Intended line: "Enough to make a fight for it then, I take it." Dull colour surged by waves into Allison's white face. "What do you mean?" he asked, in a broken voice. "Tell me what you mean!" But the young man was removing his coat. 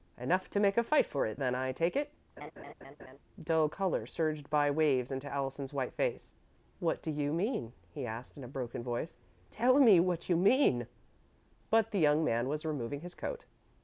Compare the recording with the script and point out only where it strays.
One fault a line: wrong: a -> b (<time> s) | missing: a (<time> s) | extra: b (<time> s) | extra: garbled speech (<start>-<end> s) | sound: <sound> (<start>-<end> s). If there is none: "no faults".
sound: laugh (2.4-3.2 s)